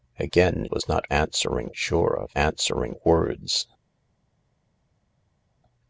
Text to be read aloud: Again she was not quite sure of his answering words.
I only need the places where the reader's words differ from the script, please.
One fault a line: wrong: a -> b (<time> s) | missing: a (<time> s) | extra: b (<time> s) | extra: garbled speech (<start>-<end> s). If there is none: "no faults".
missing: she (0.7 s)
wrong: quite -> answering (1.1 s)
missing: his (2.3 s)